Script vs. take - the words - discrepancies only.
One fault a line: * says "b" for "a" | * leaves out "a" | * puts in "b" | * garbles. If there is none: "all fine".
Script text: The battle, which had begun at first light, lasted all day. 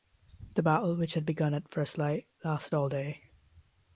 all fine